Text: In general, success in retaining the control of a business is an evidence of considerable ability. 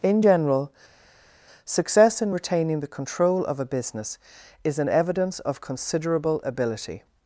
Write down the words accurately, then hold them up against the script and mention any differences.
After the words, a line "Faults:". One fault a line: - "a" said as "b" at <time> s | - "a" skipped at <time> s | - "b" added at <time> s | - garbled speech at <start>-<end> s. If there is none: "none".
In general, success in retaining the control of a business is an evidence of considerable ability.
Faults:
none